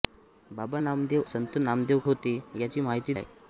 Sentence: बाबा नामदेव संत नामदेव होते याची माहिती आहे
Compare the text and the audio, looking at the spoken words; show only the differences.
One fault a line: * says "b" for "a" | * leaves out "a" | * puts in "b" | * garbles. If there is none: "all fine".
all fine